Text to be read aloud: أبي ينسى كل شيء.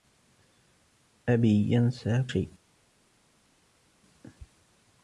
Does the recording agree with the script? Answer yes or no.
no